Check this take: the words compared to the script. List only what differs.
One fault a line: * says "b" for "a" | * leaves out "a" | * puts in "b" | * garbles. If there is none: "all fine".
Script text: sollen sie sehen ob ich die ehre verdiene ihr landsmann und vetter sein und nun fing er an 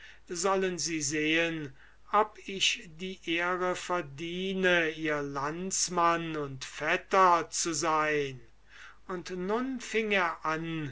* puts in "zu"